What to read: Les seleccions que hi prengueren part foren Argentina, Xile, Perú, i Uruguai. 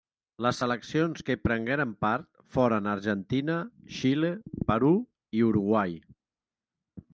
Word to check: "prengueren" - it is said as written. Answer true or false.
true